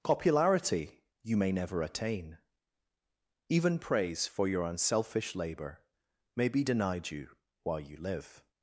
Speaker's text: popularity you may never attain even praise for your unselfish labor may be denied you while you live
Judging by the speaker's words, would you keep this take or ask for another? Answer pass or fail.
pass